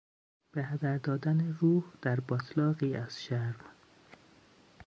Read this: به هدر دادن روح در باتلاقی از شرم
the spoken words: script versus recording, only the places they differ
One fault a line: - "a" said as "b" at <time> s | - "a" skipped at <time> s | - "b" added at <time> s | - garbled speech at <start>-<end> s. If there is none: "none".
none